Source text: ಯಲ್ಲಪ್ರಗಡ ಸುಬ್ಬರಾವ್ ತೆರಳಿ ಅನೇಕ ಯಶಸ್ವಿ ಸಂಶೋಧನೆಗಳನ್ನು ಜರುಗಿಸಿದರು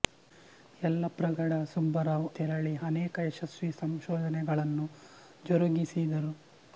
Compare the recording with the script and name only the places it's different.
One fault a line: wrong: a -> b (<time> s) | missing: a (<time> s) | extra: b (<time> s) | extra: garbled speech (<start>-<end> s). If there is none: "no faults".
no faults